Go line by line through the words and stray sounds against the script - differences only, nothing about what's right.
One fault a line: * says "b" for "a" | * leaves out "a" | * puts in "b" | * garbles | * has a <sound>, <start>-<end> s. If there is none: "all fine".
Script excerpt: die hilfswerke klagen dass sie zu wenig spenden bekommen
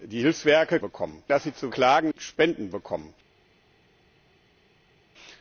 * says "bekommen" for "klagen"
* says "klagen" for "wenig"